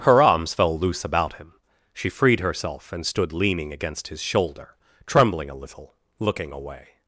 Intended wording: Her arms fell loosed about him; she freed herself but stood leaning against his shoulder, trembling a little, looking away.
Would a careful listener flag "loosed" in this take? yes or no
yes